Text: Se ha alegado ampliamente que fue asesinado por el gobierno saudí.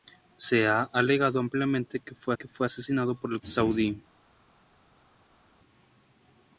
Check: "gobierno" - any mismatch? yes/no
yes